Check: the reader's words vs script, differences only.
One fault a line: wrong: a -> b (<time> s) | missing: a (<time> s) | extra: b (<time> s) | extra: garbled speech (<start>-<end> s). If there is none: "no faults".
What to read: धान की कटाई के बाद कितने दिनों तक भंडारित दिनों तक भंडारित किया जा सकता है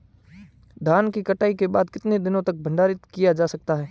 missing: दिनों तक भंडारित (3.0 s)